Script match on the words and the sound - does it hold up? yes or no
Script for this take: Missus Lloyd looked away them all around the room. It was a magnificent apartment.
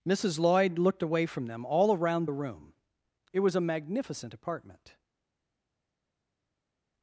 no